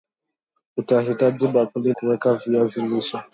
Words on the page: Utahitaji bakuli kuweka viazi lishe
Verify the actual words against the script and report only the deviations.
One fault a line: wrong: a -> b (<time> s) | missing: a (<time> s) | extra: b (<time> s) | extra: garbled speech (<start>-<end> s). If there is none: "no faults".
no faults